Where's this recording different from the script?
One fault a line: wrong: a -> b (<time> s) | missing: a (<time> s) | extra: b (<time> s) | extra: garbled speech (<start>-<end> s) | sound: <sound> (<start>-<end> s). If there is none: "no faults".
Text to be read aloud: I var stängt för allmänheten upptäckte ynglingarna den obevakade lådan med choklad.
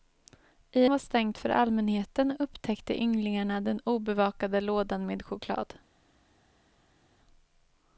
no faults